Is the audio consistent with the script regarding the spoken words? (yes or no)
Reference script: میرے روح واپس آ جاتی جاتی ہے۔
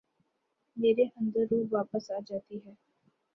no